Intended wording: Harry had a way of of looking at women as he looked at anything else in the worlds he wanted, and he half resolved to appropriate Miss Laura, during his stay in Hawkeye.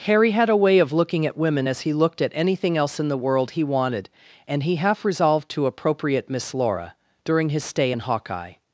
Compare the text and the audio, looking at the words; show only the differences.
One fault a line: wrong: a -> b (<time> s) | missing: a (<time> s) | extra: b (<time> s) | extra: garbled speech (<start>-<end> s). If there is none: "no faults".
missing: of (0.9 s)
wrong: worlds -> world (3.2 s)